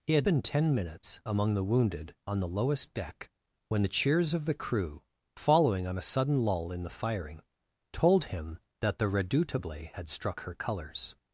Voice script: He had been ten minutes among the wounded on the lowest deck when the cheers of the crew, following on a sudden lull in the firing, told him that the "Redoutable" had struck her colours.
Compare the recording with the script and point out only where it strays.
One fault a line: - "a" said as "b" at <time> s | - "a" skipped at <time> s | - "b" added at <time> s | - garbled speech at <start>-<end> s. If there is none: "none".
none